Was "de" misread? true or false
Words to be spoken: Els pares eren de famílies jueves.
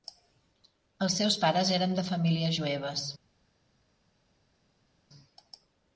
false